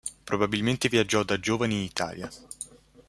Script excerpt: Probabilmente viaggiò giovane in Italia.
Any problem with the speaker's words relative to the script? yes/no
yes